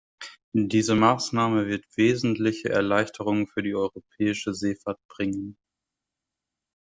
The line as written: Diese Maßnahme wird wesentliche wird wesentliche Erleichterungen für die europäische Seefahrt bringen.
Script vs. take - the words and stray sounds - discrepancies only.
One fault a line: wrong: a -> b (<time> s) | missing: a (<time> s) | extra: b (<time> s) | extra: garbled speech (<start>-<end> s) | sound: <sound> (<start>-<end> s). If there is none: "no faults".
missing: wird wesentliche (2.7 s)